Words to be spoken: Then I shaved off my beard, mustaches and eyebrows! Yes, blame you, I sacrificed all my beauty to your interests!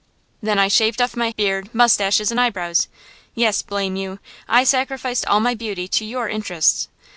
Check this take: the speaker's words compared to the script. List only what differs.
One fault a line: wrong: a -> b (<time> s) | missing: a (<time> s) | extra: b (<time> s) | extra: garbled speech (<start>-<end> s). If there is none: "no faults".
no faults